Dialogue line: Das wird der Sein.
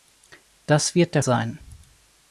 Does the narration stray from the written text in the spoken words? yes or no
no